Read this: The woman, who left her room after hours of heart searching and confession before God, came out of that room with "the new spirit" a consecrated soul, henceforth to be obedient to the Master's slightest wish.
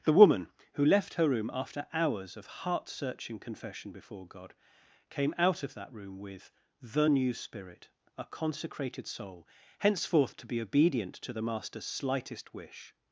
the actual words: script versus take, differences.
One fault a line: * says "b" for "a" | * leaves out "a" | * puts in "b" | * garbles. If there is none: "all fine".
* leaves out "and"